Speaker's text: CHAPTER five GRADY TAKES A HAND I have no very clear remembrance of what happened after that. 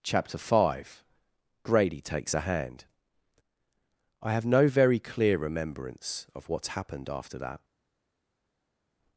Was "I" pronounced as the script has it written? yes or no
yes